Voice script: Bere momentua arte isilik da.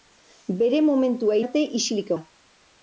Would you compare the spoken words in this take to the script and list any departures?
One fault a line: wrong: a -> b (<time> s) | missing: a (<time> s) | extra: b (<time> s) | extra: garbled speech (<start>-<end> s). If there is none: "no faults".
no faults